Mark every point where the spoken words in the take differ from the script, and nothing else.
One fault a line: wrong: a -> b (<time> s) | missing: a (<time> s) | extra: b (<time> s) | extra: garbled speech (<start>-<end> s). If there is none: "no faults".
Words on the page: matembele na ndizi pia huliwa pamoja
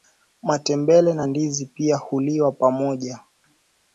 no faults